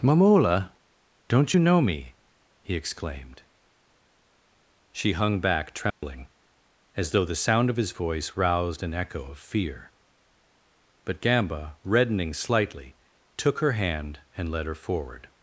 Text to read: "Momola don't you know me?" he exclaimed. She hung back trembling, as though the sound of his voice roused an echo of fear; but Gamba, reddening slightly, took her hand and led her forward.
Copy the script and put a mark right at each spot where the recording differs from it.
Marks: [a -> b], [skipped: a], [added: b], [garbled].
"Momola don't you know me?" he exclaimed. She hung back trembling, as though the sound of his voice roused an echo of fear; but Gamba, reddening slightly, took her hand and led her forward.